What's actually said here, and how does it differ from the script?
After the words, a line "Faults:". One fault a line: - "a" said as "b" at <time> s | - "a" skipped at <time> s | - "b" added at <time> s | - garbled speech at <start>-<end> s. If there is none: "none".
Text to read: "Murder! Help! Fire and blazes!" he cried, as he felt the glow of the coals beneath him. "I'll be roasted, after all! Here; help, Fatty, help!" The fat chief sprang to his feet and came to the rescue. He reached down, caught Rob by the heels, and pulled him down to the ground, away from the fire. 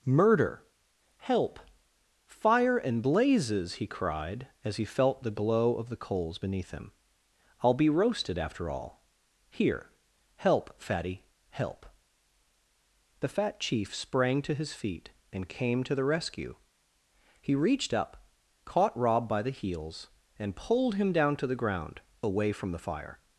"Murder! Help! Fire and blazes!" he cried, as he felt the glow of the coals beneath him. "I'll be roasted, after all! Here; help, Fatty, help!" The fat chief sprang to his feet and came to the rescue. He reached up, caught Rob by the heels, and pulled him down to the ground, away from the fire.
Faults:
- "down" said as "up" at 17.9 s